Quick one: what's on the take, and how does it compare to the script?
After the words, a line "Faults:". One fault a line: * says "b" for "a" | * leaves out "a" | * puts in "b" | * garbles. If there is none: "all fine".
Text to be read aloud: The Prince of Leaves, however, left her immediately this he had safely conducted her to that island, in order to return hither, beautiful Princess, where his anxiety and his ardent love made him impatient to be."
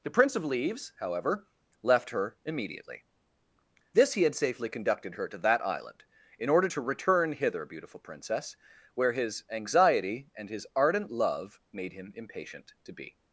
The Prince of Leaves, however, left her immediately this he had safely conducted her to that island, in order to return hither, beautiful Princess, where his anxiety and his ardent love made him impatient to be."
Faults:
all fine